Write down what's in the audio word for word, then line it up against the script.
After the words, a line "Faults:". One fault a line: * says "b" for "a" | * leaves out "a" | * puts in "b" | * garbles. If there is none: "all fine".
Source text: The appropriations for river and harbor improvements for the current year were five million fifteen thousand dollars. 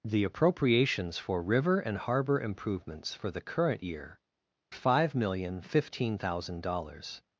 The appropriations for river and harbor improvements for the current year five million fifteen thousand dollars.
Faults:
* leaves out "were"